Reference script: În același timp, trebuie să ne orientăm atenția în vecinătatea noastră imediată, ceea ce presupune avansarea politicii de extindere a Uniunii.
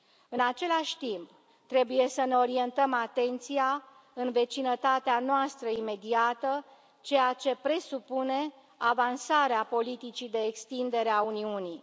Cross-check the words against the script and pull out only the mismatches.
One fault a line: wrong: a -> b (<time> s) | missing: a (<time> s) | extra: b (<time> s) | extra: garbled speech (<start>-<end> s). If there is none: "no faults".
no faults